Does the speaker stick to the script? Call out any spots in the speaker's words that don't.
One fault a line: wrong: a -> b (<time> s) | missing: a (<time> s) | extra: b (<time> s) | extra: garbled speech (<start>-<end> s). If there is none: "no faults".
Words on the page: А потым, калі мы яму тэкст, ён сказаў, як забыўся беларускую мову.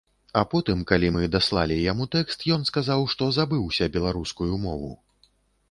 extra: даслалі (1.3 s)
wrong: як -> што (3.1 s)